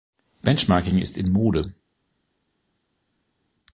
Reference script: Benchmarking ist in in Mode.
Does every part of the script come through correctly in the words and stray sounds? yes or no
no